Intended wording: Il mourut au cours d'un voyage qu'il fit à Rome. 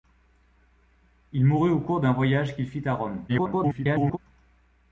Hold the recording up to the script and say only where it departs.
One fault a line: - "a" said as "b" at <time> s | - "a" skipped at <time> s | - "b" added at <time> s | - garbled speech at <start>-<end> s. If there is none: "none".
- garbled speech at 3.3-4.2 s